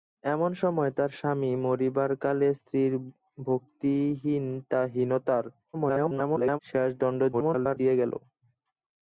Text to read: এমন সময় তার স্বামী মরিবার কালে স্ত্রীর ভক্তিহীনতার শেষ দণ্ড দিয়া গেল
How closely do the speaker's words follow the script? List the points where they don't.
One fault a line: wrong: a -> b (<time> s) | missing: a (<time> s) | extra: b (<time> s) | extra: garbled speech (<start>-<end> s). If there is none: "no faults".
extra: garbled speech (5.7-6.6 s)
extra: garbled speech (7.3-7.8 s)